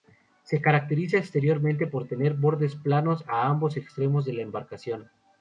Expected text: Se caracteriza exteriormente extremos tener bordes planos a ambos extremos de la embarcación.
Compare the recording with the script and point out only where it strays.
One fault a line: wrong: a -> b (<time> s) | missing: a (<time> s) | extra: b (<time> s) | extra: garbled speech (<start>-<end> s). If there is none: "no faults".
wrong: extremos -> por (1.8 s)